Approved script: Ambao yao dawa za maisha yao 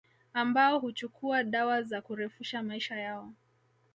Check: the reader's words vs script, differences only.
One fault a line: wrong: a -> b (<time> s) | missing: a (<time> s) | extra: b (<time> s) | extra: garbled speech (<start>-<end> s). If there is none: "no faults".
wrong: yao -> huchukua (0.8 s)
extra: kurefusha (2.0 s)